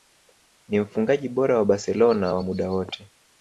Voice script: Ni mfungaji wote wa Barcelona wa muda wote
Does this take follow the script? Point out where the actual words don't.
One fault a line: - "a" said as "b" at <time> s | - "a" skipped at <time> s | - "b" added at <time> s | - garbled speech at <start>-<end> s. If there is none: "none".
- "wote" said as "bora" at 1.3 s